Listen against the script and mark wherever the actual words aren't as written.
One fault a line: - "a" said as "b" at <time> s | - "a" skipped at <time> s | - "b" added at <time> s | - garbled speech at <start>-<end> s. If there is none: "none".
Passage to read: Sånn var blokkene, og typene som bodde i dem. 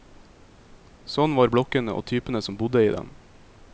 none